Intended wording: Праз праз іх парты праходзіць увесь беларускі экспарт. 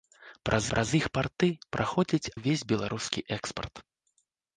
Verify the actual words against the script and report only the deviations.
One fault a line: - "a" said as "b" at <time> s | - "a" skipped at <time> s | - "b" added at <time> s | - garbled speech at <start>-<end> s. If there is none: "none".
none